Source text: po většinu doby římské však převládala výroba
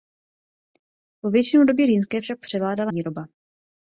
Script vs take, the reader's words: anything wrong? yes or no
no